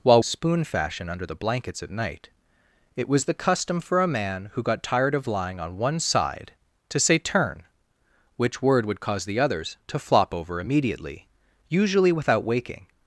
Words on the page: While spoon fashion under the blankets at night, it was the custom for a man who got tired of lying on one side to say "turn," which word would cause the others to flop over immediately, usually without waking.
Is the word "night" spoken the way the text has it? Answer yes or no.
yes